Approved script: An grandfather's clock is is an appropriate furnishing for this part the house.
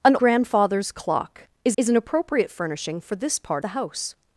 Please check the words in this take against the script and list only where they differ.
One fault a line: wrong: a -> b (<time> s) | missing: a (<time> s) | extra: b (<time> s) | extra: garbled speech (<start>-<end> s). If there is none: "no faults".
no faults